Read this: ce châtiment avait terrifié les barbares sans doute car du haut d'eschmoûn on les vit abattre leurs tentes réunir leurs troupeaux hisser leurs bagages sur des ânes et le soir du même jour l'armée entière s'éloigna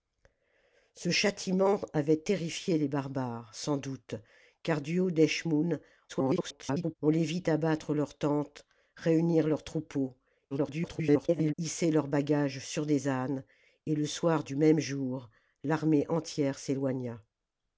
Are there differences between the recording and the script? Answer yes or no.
yes